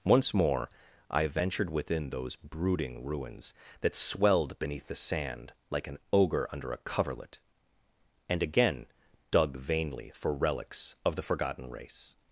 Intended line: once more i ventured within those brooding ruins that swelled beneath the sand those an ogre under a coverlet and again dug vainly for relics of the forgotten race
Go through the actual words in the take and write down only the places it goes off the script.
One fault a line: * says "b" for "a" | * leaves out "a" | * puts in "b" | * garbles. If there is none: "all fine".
* says "like" for "those"